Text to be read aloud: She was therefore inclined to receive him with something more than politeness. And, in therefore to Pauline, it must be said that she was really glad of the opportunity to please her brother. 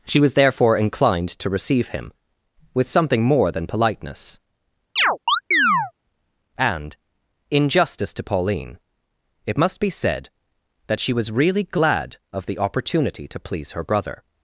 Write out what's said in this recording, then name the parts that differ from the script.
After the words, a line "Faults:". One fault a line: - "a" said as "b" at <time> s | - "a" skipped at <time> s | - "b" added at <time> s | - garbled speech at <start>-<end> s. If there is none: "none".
She was therefore inclined to receive him with something more than politeness. And, in justice to Pauline, it must be said that she was really glad of the opportunity to please her brother.
Faults:
- "therefore" said as "justice" at 7.7 s